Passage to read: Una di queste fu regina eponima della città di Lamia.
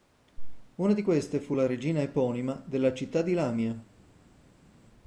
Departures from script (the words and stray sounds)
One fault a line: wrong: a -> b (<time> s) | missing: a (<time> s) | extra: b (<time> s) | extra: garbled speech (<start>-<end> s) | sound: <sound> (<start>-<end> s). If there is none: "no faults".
extra: la (1.5 s)